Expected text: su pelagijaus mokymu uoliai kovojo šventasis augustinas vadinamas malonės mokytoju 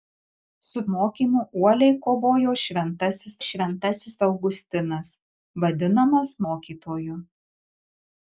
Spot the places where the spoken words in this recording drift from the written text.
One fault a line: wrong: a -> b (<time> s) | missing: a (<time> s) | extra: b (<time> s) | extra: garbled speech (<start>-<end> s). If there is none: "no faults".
missing: pelagijaus (0.8 s)
extra: šventasis (3.5 s)
missing: malonės (6.4 s)